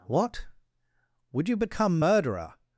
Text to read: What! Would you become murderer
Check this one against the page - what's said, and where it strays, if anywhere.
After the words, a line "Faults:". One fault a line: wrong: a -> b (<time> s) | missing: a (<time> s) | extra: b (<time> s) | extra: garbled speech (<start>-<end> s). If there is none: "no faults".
What! Would you become murderer
Faults:
no faults